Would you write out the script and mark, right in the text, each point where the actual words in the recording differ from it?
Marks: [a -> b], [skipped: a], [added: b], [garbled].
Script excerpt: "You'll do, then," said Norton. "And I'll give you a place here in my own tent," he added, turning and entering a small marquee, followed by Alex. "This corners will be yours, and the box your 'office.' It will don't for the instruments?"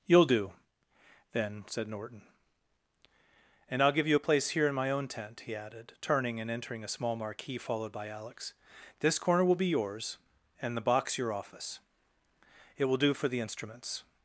"You'll do, then," said Norton. "And I'll give you a place here in my own tent," he added, turning and entering a small marquee, followed by Alex. "This [corners -> corner] will be yours, and the box your 'office.' It will [don't -> do] for the instruments?"